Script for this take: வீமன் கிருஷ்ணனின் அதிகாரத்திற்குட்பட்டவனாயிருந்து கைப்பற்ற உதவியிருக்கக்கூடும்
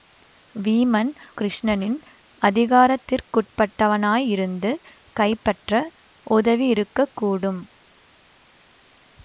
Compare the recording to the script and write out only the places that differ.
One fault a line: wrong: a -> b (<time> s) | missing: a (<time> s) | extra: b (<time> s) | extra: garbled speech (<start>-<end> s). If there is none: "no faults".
no faults